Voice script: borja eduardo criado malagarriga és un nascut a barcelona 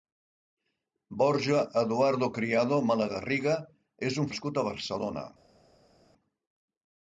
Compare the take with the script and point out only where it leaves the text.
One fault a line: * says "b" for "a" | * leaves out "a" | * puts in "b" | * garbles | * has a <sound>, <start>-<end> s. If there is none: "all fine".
all fine